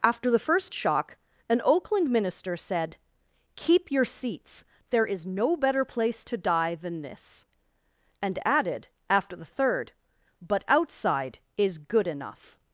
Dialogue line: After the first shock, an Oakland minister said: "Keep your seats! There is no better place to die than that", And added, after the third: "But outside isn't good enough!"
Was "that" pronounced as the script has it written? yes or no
no